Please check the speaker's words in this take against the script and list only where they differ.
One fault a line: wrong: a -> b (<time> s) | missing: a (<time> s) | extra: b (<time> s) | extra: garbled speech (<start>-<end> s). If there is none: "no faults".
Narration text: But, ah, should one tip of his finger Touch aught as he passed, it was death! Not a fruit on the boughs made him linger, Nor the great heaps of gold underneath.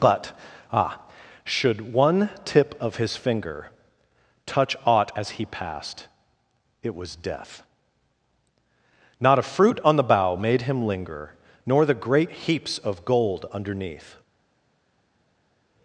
wrong: boughs -> bough (10.0 s)